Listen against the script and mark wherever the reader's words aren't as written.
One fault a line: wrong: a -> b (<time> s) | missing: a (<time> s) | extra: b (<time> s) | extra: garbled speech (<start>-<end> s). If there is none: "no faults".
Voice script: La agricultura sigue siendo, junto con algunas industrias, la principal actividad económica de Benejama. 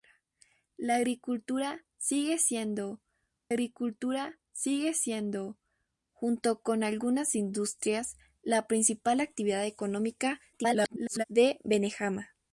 extra: agricultura sigue siendo (3.5 s)
extra: garbled speech (10.5-11.2 s)